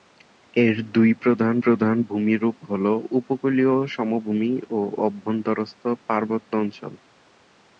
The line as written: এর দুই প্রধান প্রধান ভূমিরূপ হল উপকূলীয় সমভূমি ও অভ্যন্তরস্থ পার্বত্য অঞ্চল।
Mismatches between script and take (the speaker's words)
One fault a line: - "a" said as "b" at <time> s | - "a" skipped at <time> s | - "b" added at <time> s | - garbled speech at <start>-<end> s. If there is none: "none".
none